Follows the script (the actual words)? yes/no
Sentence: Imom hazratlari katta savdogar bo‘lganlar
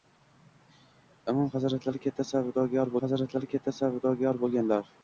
no